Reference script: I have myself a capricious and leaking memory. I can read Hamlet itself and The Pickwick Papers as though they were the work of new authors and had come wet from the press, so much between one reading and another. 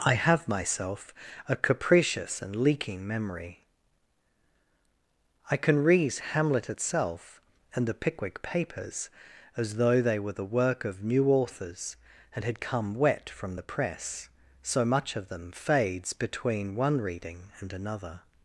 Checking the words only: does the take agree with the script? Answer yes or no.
no